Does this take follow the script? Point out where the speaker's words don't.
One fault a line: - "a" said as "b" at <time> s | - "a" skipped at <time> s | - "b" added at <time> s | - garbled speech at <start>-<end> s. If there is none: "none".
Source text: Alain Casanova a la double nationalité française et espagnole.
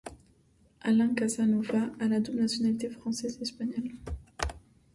none